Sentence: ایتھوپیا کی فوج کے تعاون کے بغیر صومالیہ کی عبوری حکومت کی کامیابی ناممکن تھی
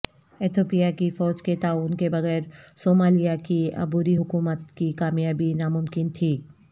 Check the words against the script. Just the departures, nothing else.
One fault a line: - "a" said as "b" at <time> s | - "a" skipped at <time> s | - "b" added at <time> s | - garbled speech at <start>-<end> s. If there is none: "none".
none